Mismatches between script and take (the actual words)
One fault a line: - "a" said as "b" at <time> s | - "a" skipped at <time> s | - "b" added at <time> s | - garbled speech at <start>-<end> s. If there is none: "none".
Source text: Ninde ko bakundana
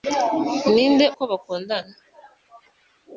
none